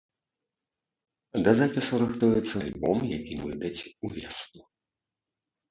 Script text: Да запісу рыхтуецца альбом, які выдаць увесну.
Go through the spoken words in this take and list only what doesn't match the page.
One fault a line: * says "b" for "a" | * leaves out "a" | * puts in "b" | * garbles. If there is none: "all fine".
all fine